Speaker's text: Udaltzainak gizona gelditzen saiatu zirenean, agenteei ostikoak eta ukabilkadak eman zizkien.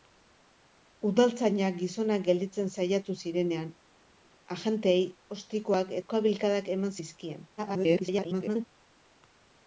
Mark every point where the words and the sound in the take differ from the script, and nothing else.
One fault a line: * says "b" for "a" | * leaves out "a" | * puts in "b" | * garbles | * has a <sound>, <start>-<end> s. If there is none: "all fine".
* leaves out "eta"
* garbles